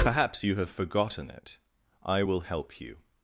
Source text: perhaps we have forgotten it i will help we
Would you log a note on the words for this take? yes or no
yes